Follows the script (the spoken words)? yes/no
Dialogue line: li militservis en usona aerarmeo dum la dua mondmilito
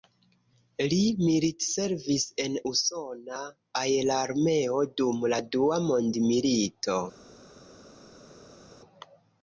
yes